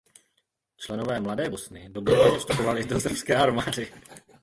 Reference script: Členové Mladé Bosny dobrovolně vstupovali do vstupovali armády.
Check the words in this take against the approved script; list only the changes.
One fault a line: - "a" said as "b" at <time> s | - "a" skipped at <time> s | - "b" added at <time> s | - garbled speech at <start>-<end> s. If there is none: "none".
- "vstupovali" said as "srbské" at 3.0 s